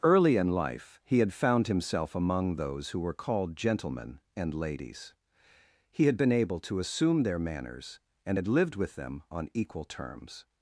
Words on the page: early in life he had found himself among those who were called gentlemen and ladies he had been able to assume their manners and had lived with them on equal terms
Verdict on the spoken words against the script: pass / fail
pass